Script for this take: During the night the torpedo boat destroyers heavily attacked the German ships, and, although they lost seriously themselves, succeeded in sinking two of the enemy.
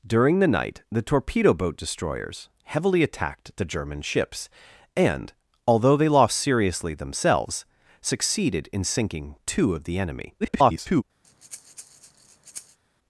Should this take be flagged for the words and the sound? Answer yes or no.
yes